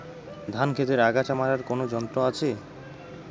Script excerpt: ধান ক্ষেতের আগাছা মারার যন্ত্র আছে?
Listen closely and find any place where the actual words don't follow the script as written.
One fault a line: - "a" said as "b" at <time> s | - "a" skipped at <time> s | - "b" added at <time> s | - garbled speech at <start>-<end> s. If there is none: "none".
- "কোন" added at 1.6 s